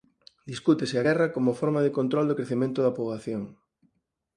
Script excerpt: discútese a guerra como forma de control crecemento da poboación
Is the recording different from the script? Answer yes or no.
yes